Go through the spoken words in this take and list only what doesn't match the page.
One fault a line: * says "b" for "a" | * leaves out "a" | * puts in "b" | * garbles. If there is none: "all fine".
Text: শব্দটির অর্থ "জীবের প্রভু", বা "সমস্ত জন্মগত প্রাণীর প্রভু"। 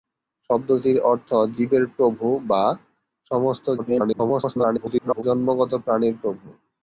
* garbles